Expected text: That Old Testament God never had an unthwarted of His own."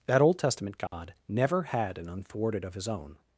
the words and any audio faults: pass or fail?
fail